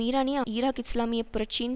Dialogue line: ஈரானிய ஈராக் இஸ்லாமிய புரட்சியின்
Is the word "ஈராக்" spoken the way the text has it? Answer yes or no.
yes